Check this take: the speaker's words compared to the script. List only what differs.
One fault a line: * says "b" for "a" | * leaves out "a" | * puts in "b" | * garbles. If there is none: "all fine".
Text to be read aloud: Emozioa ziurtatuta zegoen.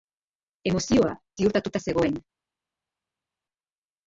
all fine